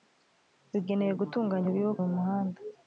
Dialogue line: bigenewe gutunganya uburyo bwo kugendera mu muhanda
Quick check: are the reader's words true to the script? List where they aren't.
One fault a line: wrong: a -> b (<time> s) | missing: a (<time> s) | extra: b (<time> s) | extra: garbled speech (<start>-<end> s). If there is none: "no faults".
missing: kugendera (2.0 s)